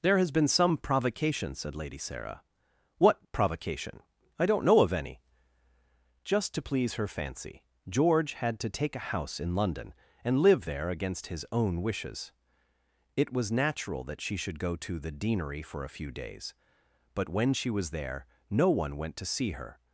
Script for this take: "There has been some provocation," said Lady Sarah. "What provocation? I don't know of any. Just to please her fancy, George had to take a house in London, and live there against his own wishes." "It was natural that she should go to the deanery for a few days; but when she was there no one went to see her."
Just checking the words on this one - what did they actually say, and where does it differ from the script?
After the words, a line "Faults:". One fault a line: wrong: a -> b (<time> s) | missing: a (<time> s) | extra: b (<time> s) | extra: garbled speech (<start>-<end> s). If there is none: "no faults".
"There has been some provocation," said Lady Sarah. "What provocation? I don't know of any. Just to please her fancy, George had to take a house in London, and live there against his own wishes." "It was natural that she should go to the deanery for a few days; but when she was there no one went to see her."
Faults:
no faults